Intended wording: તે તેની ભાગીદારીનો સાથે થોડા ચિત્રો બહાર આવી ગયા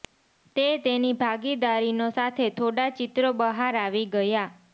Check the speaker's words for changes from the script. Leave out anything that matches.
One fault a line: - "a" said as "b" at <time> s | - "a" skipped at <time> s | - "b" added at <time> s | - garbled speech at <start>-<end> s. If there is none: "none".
none